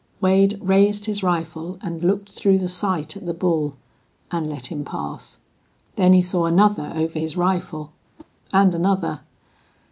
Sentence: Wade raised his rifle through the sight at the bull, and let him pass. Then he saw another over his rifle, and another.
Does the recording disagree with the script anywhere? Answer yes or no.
yes